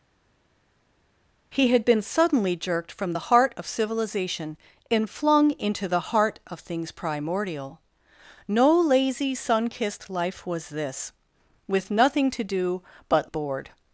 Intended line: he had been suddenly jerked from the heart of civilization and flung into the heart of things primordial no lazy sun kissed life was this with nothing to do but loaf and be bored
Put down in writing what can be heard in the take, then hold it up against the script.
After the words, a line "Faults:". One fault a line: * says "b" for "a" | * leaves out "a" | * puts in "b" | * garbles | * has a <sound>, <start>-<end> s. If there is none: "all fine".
he had been suddenly jerked from the heart of civilization and flung into the heart of things primordial no lazy sun kissed life was this with nothing to do but bored
Faults:
* leaves out "loaf and be"